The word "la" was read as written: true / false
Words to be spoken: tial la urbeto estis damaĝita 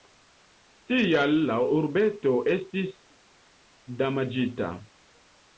true